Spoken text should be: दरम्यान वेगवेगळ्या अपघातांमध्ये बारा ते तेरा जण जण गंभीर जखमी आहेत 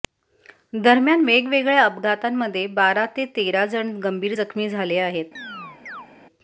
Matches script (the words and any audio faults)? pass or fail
fail